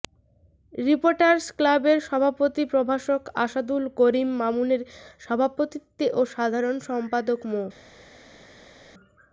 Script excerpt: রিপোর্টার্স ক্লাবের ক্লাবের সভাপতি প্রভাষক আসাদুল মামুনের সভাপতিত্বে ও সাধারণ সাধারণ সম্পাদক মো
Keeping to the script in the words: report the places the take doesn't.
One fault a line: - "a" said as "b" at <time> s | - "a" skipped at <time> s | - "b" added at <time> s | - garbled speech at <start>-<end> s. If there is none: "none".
- "ক্লাবের" skipped at 2.0 s
- "করিম" added at 4.0 s
- "সাধারণ" skipped at 6.8 s